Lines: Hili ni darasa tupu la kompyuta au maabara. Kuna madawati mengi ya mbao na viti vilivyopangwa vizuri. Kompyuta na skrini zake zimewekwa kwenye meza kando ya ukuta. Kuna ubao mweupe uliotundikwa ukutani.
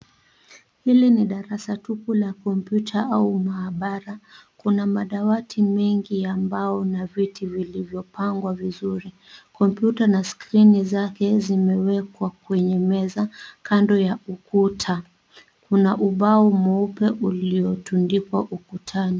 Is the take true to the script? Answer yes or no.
yes